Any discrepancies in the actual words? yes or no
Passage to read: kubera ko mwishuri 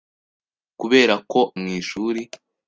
no